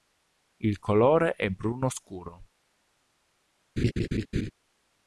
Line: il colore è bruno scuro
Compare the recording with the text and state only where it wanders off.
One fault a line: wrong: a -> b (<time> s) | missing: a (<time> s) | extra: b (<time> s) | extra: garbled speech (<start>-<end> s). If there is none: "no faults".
no faults